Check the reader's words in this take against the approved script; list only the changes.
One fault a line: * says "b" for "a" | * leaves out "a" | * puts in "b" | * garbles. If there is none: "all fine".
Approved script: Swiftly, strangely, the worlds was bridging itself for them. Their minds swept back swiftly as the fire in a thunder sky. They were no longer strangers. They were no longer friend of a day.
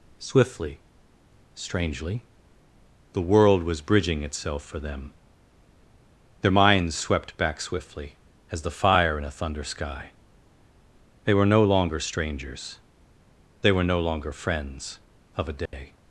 * says "world" for "worlds"
* says "friends" for "friend"